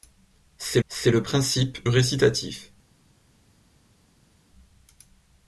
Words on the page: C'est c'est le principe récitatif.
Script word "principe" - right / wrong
right